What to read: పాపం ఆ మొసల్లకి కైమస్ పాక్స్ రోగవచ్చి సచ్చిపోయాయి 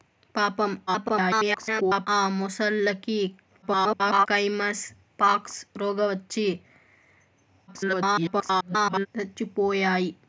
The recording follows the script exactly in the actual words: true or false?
false